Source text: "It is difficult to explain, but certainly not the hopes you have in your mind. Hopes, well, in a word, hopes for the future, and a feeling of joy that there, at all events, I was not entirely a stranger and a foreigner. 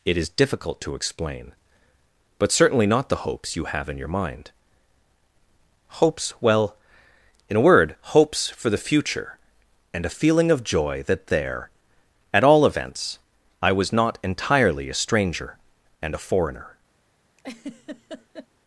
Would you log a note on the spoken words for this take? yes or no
no